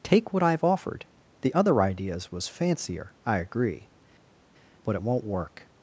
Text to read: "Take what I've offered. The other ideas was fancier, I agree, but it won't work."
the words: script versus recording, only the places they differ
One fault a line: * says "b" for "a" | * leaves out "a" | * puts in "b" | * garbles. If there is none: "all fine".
all fine